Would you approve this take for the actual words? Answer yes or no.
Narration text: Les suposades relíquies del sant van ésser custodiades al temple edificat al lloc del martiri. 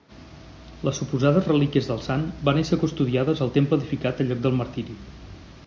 yes